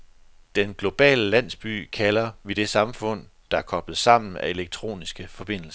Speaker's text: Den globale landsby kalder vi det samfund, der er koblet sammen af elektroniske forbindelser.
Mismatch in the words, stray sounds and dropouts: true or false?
false